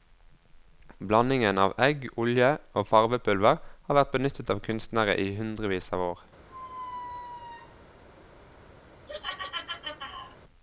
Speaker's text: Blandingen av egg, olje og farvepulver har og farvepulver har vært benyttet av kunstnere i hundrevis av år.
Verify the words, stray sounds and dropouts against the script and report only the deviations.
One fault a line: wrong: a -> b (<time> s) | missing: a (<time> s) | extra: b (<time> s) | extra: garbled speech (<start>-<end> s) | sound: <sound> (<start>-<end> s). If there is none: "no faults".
missing: og farvepulver har (4.0 s)
sound: squeak (6.5-7.8 s)
sound: laugh (9.1-10.4 s)